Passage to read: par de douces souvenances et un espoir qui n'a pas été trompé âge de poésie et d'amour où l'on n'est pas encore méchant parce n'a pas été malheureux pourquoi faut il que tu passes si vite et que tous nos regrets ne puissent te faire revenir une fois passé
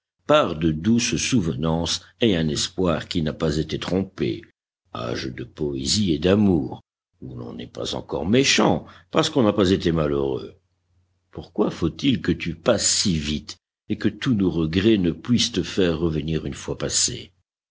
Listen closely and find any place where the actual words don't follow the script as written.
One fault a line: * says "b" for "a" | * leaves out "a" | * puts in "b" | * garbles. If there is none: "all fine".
* puts in "qu'on"